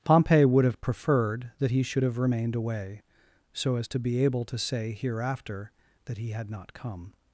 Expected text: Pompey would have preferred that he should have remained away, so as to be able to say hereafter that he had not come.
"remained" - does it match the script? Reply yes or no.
yes